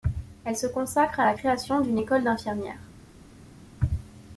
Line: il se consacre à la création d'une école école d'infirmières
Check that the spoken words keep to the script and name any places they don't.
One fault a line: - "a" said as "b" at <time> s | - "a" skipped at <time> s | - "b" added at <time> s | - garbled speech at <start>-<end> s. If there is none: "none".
- "il" said as "elle" at 0.5 s
- "école" skipped at 2.3 s